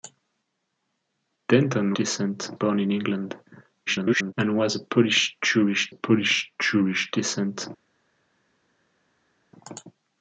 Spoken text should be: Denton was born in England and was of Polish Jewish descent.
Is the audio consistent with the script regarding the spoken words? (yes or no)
no